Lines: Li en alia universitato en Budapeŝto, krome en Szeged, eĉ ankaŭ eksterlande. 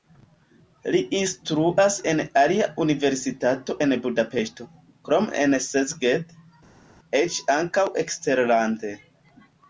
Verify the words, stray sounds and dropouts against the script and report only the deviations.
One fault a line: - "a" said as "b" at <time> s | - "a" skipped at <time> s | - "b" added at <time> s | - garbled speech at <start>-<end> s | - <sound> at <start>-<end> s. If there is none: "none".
- "instruas" added at 1.2 s